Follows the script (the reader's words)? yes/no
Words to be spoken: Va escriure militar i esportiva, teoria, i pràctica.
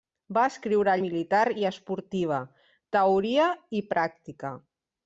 yes